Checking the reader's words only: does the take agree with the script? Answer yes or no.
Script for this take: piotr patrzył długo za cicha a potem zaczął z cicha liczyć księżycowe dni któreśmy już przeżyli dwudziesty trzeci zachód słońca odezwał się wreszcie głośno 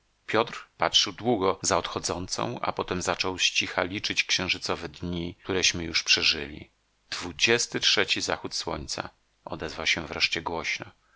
no